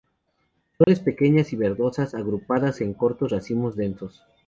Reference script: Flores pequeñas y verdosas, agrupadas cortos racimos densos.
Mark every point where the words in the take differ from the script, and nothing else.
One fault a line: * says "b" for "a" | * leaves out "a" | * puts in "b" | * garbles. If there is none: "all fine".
* puts in "en"